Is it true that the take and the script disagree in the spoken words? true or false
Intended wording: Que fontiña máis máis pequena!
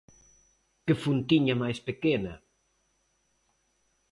true